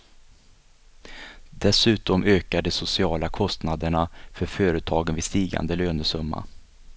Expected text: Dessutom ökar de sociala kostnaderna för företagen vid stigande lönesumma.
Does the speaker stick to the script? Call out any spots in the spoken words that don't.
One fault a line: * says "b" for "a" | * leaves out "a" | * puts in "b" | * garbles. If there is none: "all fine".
all fine